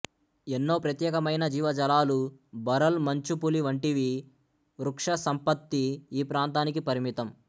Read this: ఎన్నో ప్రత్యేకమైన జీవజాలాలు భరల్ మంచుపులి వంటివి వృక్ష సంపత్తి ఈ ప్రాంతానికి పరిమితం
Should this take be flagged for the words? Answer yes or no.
no